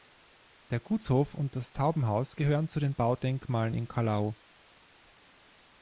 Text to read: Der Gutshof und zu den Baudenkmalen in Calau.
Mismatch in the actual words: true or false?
true